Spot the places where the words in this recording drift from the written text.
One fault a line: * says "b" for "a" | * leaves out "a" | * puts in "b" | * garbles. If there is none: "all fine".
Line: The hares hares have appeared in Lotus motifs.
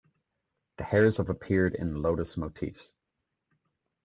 * leaves out "hares"